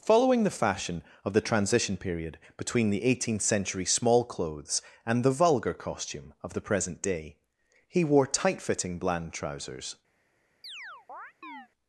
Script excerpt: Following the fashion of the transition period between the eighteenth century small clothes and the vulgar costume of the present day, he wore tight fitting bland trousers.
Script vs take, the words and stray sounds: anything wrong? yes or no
yes